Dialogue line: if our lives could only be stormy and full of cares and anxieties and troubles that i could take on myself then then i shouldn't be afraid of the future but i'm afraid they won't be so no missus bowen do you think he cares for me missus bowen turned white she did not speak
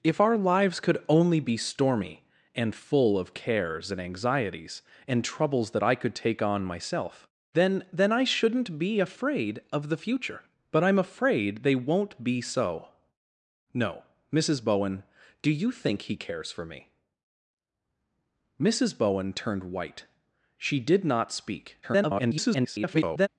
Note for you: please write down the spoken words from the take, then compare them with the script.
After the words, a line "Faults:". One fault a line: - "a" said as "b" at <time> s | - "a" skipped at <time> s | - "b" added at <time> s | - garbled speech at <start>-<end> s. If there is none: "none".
if our lives could only be stormy and full of cares and anxieties and troubles that i could take on myself then then i shouldn't be afraid of the future but i'm afraid they won't be so no missus bowen do you think he cares for me missus bowen turned white she did not speak [garbled]
Faults:
- garbled speech at 21.8-23.3 s